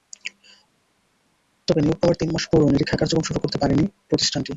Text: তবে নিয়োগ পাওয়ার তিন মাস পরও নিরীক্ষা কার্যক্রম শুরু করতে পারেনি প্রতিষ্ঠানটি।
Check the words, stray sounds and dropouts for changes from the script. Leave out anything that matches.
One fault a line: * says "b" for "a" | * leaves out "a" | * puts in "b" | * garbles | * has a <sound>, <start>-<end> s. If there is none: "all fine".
all fine